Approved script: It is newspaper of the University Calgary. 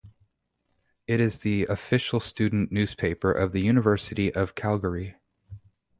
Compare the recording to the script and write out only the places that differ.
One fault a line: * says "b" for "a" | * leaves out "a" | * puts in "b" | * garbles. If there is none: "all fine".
* puts in "the official student"
* puts in "of"